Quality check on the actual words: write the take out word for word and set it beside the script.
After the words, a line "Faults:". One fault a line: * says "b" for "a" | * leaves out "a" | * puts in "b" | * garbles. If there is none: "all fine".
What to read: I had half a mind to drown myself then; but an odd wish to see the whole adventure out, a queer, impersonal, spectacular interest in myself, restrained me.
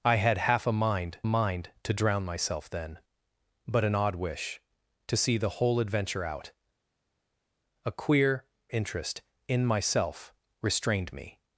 I had half a mind mind to drown myself then; but an odd wish to see the whole adventure out, a queer, interest in myself, restrained me.
Faults:
* puts in "mind"
* leaves out "impersonal spectacular"